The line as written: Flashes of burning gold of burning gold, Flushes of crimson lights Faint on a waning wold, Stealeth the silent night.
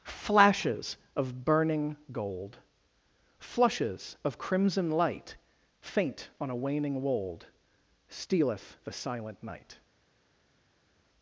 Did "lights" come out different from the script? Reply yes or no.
yes